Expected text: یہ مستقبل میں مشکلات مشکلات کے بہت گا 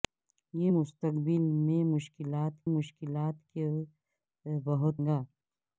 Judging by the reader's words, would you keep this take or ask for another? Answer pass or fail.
pass